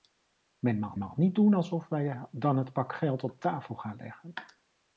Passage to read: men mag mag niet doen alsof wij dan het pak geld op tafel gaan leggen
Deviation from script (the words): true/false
false